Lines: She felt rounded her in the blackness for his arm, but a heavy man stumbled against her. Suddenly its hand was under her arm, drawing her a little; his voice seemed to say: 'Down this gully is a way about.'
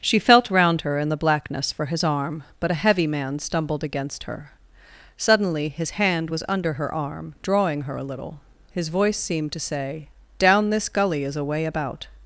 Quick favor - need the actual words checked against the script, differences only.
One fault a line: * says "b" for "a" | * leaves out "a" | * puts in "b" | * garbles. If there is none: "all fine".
* says "round" for "rounded"
* says "his" for "its"